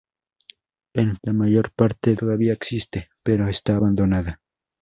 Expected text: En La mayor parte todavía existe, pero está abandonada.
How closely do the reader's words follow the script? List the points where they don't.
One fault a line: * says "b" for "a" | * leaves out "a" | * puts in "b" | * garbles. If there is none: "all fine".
all fine